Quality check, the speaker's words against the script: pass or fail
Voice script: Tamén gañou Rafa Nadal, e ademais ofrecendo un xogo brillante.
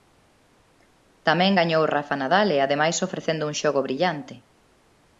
pass